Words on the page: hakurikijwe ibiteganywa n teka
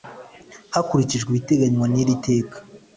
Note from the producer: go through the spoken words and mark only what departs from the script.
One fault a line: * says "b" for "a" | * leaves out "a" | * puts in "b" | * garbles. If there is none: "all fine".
* puts in "iri"